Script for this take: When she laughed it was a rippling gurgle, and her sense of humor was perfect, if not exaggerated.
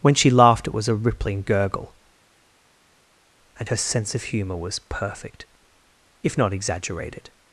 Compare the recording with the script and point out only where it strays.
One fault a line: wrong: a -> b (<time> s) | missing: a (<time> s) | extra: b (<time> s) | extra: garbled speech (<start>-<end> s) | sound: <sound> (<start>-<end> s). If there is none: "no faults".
no faults